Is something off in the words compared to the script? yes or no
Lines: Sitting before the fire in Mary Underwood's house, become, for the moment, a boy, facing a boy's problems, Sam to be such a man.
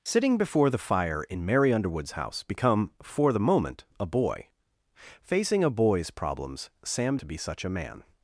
no